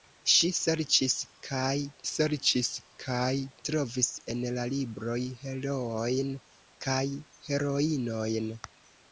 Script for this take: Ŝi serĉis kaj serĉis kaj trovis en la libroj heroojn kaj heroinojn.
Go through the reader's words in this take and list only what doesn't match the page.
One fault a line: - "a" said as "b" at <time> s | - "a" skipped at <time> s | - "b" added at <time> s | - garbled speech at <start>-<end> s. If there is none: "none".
none